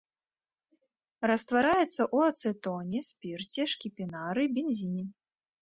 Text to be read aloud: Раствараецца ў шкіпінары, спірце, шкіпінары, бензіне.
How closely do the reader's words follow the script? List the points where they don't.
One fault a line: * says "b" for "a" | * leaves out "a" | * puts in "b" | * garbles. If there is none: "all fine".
* says "ацэтоне" for "шкіпінары"